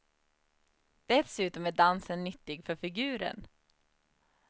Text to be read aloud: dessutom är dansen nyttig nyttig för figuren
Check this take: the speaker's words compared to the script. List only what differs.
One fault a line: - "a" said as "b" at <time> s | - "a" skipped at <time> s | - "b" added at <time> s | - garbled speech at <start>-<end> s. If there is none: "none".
- "nyttig" skipped at 2.6 s